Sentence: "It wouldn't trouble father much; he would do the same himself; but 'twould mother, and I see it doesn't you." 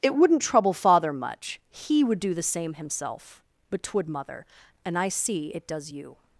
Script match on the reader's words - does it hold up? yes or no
no